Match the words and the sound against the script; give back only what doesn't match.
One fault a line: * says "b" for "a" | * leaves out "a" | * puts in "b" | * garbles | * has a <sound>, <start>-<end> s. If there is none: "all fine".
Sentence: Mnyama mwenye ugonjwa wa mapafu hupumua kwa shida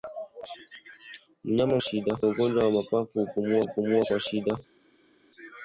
* says "shida" for "mwenye"
* puts in "hupumua"